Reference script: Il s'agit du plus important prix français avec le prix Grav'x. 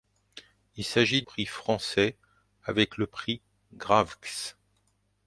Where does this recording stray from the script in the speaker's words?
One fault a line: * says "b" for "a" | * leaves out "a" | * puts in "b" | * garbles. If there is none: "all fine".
* leaves out "du plus important"